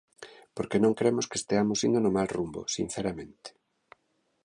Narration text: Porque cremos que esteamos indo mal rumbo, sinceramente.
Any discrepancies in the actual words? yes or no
yes